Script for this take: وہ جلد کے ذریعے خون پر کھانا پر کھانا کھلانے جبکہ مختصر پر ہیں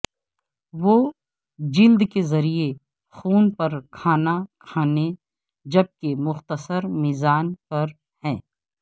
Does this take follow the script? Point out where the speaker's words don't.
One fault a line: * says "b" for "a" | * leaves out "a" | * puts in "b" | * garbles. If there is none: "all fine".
* leaves out "پر کھانا"
* puts in "میزبان"